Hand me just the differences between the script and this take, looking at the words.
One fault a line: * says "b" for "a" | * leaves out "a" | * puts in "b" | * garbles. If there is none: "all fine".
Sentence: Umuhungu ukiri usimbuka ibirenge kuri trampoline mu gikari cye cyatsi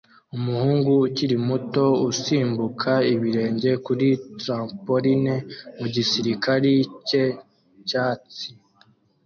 * puts in "muto"